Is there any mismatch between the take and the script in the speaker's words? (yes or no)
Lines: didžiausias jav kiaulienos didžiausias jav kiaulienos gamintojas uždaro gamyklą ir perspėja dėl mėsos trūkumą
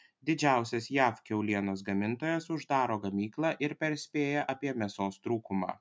yes